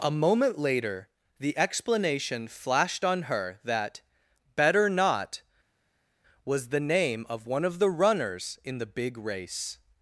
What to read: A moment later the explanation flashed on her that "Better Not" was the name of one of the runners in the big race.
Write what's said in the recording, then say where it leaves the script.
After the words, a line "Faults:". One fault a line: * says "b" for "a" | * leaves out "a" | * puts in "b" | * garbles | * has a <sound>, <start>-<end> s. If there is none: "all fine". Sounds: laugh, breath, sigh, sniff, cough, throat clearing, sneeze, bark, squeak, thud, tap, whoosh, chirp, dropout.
A moment later the explanation flashed on her that "Better Not" was the name of one of the runners in the big race.
Faults:
all fine